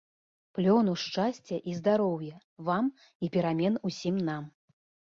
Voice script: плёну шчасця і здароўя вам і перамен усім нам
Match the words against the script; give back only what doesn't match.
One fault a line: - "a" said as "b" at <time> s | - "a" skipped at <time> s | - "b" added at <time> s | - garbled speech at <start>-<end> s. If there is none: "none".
none